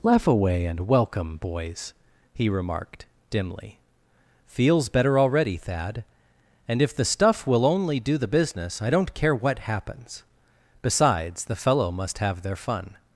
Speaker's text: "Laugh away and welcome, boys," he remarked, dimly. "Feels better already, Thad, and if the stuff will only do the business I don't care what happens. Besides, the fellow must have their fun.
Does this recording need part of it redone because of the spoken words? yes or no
no